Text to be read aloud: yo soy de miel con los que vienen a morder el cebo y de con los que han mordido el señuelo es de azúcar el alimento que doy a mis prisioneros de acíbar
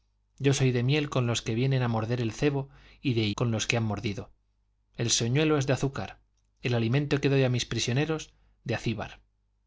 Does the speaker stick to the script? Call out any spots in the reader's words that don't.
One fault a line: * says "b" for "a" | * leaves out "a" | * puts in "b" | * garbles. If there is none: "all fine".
all fine